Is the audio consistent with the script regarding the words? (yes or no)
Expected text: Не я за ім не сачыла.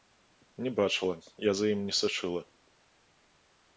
no